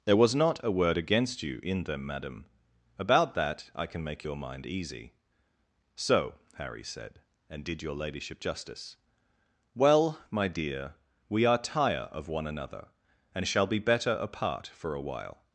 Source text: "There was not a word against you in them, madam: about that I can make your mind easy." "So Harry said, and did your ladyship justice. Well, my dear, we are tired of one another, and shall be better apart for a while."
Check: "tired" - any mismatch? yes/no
yes